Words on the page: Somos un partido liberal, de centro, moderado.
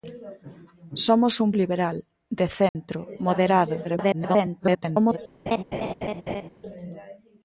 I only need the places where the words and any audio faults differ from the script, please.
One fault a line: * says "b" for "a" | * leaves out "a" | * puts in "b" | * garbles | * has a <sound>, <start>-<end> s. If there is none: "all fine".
* leaves out "partido"
* has a dropout, 2.7-2.8 s
* garbles
* has a laugh, 5.5-6.5 s